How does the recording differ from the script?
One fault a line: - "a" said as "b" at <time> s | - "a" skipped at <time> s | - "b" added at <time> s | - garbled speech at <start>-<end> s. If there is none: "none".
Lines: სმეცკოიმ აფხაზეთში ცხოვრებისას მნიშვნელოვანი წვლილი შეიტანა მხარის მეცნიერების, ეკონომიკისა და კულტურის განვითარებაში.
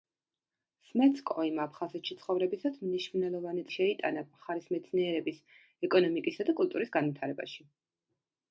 - "წვლილი" skipped at 3.6 s